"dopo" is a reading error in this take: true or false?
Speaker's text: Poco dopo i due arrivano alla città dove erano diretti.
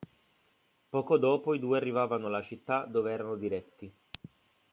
false